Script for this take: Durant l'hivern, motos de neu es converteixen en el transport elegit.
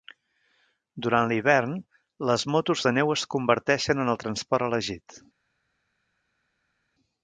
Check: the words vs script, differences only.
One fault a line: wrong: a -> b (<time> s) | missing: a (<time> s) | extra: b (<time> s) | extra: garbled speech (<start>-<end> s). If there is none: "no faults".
extra: les (2.3 s)